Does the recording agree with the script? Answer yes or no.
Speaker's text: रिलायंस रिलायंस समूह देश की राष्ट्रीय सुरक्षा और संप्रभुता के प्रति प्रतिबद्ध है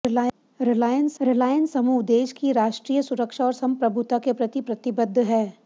yes